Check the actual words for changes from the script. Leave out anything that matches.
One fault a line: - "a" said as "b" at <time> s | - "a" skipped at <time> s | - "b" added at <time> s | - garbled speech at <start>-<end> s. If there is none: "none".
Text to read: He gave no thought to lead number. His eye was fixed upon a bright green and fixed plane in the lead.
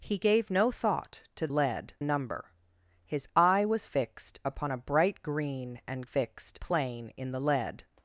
none